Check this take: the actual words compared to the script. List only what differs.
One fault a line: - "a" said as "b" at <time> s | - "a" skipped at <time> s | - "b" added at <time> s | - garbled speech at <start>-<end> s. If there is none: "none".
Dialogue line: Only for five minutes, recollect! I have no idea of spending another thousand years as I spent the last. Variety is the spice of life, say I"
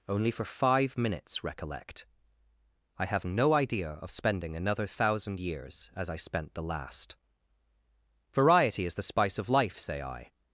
none